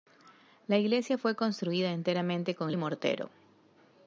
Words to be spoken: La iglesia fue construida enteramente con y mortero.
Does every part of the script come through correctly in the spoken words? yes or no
yes